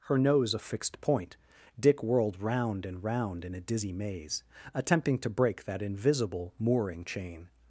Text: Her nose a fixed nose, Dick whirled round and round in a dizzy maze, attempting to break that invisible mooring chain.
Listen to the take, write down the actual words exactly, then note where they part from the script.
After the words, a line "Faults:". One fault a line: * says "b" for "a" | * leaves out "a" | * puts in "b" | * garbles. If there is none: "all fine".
Her nose a fixed point, Dick whirled round and round in a dizzy maze, attempting to break that invisible mooring chain.
Faults:
* says "point" for "nose"